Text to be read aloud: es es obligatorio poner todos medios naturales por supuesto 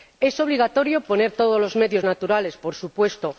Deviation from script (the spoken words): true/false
true